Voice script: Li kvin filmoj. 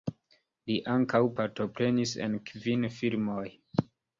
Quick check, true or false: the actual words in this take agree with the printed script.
false